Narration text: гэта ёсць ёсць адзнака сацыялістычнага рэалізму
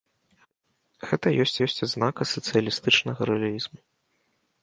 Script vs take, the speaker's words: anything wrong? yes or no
no